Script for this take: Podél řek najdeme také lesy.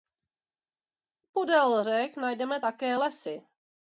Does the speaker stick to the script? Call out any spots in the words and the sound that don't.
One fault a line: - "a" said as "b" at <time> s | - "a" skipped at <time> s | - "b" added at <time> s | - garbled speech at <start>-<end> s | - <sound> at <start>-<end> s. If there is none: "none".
none